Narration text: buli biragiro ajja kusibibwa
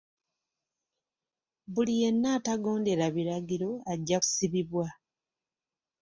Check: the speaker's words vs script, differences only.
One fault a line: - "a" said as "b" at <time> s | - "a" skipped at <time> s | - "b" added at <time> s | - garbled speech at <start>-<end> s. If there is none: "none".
- "yenna atagondera" added at 2.0 s